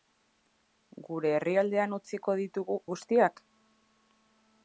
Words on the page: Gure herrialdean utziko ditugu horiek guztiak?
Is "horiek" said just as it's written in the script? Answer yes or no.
no